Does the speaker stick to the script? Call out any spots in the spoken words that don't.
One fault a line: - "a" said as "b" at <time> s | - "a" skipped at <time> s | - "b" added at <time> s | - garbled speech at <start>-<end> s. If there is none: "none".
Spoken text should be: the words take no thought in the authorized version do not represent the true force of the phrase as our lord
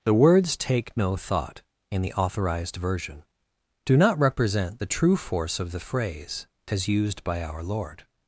- "used by" added at 6.9 s